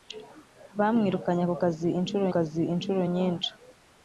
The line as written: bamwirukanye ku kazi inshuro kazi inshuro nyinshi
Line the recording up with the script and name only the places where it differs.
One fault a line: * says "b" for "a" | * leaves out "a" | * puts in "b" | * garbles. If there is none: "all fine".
all fine